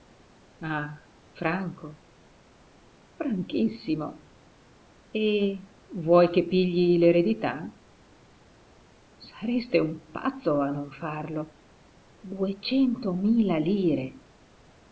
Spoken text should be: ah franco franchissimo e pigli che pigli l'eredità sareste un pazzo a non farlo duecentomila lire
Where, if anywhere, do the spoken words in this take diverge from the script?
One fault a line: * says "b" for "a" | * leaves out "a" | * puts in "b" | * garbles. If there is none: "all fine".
* says "vuoi" for "pigli"